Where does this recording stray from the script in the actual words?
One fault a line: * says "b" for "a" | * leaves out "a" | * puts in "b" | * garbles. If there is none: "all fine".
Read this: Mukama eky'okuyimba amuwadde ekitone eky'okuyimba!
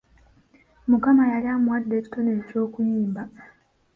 * says "yali" for "eky'okuyimba"